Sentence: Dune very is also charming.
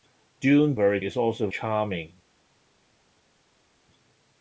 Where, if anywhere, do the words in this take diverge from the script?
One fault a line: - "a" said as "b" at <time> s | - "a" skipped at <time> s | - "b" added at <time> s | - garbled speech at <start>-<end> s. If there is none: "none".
none